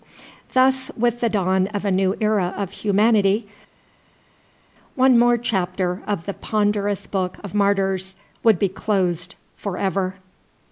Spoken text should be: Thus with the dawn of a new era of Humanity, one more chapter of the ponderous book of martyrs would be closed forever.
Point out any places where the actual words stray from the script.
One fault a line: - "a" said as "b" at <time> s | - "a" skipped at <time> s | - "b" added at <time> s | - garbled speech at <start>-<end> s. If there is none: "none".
none